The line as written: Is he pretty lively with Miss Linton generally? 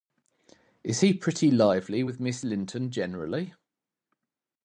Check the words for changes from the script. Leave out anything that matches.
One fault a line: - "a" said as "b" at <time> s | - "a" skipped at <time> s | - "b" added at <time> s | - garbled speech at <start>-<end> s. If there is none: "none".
none